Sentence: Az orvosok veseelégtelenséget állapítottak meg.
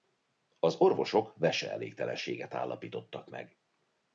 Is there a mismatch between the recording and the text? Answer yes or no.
no